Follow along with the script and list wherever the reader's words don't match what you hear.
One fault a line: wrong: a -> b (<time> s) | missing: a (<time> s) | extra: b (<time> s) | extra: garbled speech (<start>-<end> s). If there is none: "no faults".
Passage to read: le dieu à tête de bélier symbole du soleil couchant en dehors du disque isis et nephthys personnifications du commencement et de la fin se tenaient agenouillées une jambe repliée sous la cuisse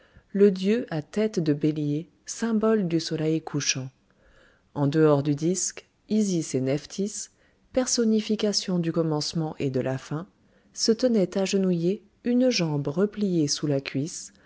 no faults